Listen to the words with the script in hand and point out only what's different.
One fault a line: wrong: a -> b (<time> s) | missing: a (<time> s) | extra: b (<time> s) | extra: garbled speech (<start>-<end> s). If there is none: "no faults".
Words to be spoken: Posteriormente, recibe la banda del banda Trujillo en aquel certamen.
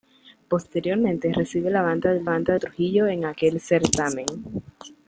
no faults